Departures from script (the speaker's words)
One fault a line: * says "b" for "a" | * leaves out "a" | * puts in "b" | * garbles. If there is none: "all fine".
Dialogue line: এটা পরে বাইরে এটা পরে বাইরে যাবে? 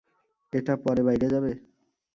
* leaves out "এটা পরে বাইরে"